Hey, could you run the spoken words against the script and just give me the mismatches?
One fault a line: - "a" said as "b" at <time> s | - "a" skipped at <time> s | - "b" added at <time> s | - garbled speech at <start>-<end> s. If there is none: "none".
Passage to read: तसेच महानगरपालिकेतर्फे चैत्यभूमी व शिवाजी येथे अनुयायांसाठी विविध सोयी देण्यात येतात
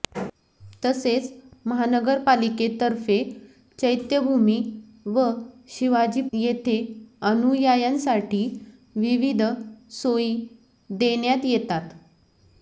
none